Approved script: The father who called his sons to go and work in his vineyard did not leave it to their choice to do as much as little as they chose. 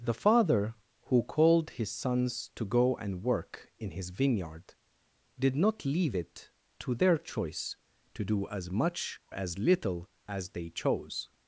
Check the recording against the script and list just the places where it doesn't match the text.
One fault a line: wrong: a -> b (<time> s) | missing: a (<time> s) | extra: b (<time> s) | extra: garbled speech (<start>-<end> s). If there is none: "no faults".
no faults